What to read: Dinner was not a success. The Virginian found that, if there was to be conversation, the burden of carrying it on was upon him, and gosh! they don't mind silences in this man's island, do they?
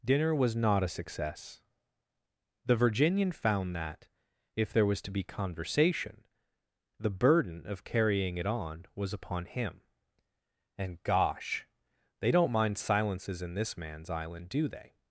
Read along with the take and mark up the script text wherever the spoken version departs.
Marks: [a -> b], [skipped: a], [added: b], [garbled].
Dinner was not a success. The Virginian found that, if there was to be conversation, the burden of carrying it on was upon him, and gosh! they don't mind silences in this man's island, do they?